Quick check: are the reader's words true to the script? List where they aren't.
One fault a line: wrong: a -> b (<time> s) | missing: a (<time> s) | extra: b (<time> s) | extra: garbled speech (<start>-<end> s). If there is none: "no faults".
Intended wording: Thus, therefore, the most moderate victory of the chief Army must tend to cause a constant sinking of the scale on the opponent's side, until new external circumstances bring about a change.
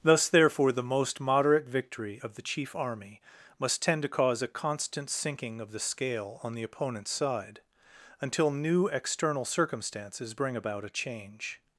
no faults